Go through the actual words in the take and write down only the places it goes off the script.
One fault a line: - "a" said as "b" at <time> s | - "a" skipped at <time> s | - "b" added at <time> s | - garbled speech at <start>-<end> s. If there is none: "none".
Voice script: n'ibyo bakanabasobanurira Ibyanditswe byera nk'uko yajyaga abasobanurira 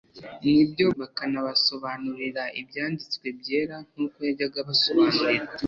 none